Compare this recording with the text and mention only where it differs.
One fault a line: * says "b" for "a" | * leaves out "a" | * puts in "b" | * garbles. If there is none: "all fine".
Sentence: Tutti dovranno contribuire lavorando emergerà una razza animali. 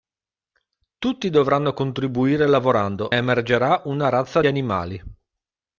all fine